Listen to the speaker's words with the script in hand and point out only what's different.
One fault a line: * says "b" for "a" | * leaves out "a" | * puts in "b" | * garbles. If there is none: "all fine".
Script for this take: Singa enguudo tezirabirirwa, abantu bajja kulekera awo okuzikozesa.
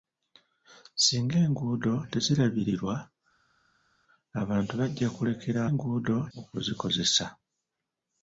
* says "enguudo" for "awo"